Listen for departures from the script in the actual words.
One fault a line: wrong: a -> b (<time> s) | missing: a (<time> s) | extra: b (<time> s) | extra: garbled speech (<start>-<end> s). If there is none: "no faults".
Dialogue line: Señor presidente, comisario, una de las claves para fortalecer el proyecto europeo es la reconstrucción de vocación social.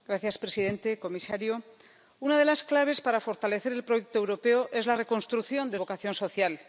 no faults